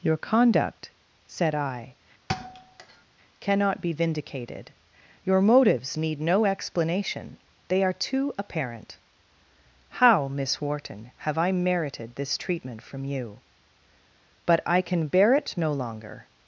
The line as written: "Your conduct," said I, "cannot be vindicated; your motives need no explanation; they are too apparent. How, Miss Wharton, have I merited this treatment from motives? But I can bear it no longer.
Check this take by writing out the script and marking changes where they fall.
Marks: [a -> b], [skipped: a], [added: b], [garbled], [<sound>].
"Your conduct," said I, [thud] "cannot be vindicated; your motives need no explanation; they are too apparent. How, Miss Wharton, have I merited this treatment from [motives? -> you] But I can bear it no longer.